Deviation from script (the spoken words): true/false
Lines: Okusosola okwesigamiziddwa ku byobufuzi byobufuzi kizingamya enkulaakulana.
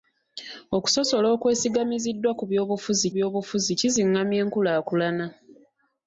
false